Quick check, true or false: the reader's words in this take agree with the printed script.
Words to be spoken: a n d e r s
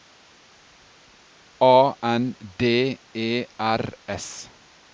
true